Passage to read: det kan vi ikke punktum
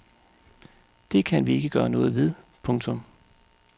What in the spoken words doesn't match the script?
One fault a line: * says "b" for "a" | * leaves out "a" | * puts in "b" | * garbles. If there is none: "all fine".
* puts in "gøre noget ved"